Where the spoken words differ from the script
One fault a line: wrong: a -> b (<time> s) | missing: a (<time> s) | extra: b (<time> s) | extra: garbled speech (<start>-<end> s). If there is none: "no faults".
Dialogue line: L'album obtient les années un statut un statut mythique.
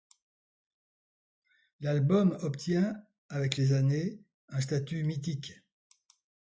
extra: avec (3.3 s)
missing: un statut (5.0 s)